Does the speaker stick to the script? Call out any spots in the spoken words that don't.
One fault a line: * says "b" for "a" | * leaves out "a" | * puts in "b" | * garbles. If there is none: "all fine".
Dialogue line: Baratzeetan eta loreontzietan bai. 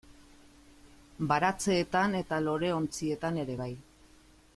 * puts in "ere"